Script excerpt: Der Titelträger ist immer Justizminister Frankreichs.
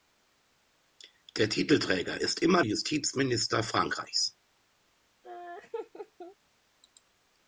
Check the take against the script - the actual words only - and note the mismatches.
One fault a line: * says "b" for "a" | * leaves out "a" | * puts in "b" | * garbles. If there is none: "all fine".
all fine